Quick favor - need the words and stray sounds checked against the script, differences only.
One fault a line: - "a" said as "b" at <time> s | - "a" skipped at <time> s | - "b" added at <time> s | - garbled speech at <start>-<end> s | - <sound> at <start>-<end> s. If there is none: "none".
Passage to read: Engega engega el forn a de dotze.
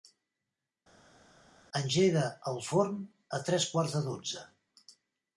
- "engega" skipped at 2.2 s
- "tres quarts" added at 3.5 s